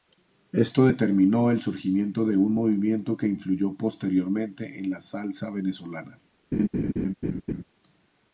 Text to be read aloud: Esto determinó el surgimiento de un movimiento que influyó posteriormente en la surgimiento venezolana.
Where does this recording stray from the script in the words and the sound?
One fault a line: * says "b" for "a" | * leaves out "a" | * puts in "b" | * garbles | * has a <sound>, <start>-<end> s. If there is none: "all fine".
* says "salsa" for "surgimiento"
* has a laugh, 6.5-7.6 s